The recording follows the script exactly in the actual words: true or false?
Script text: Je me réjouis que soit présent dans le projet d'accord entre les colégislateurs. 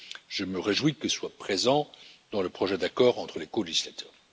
true